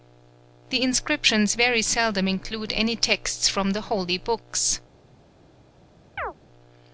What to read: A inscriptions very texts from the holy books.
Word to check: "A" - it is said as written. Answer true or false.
false